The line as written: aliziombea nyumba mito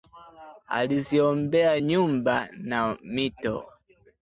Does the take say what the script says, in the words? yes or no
no